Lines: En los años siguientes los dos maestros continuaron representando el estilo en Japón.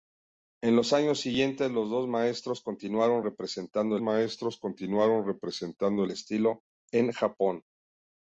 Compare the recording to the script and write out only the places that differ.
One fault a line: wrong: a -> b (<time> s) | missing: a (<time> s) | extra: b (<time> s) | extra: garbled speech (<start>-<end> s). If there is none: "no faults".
extra: maestros continuaron representando (4.0 s)